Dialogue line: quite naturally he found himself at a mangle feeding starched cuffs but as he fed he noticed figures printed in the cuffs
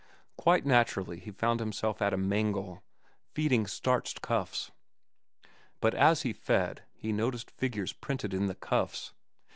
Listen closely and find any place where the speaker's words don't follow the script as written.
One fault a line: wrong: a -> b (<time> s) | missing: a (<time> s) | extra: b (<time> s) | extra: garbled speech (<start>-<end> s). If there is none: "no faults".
no faults